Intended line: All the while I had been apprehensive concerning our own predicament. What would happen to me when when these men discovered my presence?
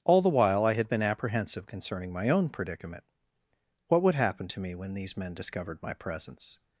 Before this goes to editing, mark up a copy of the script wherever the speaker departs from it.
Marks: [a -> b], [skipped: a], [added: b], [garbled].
All the while I had been apprehensive concerning [our -> my] own predicament. What would happen to me when [skipped: when] these men discovered my presence?